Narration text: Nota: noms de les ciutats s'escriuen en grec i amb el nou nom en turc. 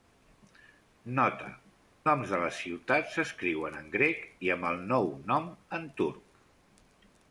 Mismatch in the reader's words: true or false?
false